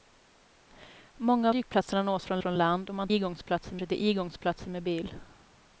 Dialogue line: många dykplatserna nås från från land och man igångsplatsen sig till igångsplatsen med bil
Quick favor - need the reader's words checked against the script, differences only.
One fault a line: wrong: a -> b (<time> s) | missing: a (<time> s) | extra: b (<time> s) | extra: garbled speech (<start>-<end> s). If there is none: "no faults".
no faults